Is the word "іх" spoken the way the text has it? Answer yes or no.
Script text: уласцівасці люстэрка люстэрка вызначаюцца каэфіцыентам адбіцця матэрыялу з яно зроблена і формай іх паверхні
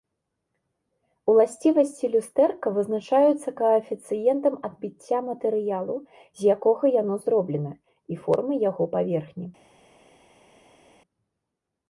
no